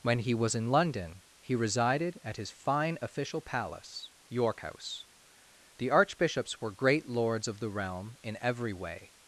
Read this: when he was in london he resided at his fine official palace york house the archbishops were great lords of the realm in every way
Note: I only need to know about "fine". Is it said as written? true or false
true